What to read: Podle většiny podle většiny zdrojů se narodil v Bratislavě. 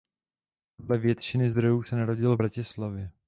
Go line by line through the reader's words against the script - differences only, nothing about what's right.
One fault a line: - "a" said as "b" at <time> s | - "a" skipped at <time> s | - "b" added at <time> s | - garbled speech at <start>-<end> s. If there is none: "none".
- "podle většiny" skipped at 1.5 s